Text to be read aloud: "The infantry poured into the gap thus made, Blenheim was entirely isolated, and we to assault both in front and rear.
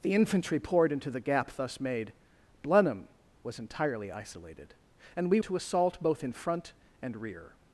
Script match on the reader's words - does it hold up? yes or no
yes